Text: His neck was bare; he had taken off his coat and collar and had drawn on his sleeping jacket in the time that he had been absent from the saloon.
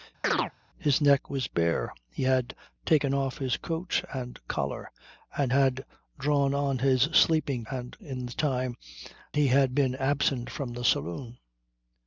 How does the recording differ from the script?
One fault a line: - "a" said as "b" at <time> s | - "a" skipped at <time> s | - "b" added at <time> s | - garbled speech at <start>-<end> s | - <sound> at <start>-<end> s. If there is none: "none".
- chirp at 0.2-0.5 s
- "jacket" said as "and" at 7.7 s
- "that" skipped at 8.7 s